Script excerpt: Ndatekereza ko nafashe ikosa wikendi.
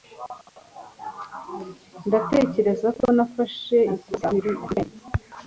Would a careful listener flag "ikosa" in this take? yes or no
no